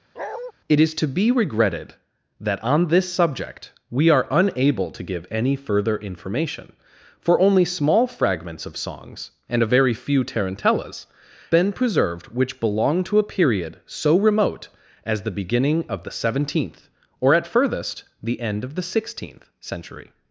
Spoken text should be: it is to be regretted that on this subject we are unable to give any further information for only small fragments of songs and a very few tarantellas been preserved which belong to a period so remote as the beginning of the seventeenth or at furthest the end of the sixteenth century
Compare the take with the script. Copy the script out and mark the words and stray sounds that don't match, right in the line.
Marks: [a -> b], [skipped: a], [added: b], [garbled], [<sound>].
[bark] it is to be regretted that on this subject we are unable to give any further information for only small fragments of songs and a very few tarantellas been preserved which belong to a period so remote as the beginning of the seventeenth or at furthest the end of the sixteenth century